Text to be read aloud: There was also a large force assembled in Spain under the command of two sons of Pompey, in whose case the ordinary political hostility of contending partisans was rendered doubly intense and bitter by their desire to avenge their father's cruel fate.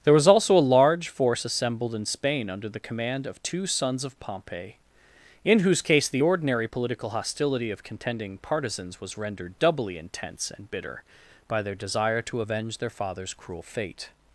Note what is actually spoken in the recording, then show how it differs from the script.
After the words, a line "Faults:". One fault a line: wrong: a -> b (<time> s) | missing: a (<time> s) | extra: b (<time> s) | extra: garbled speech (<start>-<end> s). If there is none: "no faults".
There was also a large force assembled in Spain under the command of two sons of Pompey, in whose case the ordinary political hostility of contending partisans was rendered doubly intense and bitter by their desire to avenge their father's cruel fate.
Faults:
no faults